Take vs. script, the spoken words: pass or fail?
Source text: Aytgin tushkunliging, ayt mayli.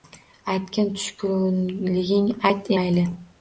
pass